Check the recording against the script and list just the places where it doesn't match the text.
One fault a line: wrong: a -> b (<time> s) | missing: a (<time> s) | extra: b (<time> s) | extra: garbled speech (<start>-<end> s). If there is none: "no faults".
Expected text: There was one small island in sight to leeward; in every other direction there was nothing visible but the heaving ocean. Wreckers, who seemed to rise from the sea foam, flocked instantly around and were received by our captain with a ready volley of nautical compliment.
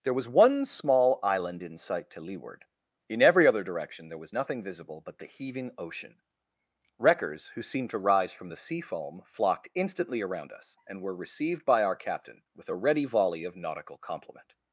extra: us (10.5 s)